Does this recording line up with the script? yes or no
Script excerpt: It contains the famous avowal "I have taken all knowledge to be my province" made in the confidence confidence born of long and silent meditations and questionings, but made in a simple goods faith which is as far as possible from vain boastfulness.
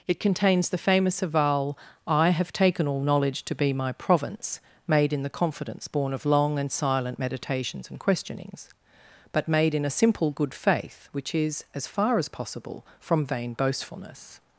no